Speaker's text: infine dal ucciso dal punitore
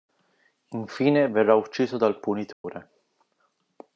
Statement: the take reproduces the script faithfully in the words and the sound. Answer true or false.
false